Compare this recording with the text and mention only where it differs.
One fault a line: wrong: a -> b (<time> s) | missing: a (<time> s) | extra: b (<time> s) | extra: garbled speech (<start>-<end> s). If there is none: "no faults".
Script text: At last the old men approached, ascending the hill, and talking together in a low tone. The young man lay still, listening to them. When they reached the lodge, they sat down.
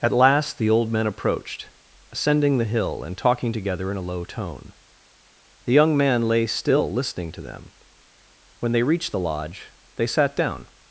no faults